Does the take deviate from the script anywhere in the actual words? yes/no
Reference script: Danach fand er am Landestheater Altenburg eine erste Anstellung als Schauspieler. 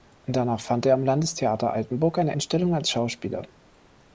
yes